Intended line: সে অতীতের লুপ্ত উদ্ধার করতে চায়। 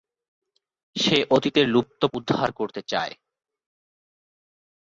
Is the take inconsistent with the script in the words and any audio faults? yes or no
no